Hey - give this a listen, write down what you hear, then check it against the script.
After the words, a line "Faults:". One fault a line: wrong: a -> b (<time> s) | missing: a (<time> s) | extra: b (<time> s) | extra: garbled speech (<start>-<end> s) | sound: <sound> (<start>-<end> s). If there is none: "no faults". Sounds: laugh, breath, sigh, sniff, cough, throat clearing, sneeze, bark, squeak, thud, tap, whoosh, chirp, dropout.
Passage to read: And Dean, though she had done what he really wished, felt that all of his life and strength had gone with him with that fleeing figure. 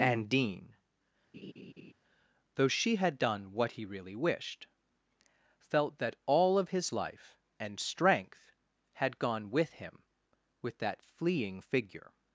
And Dean, though she had done what he really wished, felt that all of his life and strength had gone with him with that fleeing figure.
Faults:
sound: laugh (1.3-1.9 s)